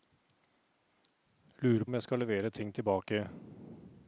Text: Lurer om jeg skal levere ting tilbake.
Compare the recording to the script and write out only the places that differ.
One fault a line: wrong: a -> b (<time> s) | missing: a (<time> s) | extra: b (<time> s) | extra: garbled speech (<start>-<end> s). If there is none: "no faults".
no faults